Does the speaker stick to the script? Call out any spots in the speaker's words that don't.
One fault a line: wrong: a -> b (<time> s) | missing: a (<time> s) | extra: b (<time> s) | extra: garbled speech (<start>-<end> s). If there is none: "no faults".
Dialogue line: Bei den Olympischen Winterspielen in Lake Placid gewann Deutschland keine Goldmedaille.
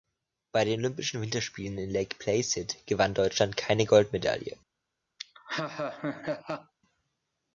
no faults